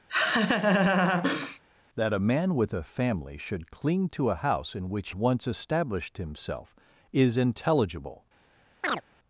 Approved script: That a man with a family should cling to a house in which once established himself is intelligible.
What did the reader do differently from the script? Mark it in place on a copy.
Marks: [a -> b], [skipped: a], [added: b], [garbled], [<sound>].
[laugh] That a man with a family should cling to a house in which once established himself is intelligible. [chirp]